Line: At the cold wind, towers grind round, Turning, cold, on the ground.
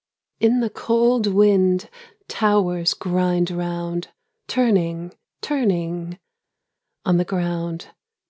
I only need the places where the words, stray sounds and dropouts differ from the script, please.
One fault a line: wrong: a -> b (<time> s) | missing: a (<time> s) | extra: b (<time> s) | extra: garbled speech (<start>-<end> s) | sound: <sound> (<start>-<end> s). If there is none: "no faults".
wrong: At -> In (0.4 s)
wrong: cold -> turning (5.4 s)